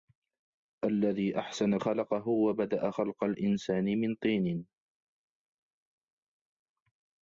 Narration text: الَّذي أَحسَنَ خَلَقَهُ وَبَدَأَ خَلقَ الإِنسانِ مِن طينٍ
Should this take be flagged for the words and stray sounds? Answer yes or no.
no